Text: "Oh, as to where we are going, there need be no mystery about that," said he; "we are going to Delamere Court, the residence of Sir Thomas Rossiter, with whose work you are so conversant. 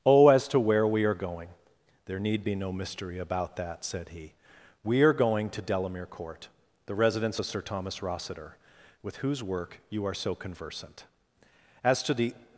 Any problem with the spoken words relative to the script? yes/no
yes